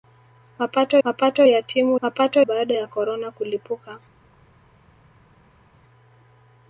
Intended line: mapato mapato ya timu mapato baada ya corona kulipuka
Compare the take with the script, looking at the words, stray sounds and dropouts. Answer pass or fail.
pass